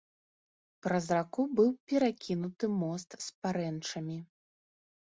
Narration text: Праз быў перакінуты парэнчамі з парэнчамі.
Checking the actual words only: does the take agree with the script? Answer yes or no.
no